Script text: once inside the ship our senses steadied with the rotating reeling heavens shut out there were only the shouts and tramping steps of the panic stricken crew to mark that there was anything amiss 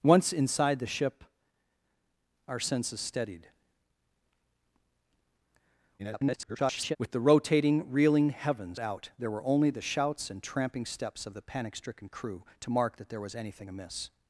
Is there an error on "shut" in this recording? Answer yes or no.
yes